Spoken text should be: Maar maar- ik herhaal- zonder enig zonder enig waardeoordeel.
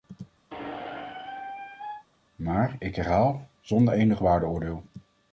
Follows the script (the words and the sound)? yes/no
no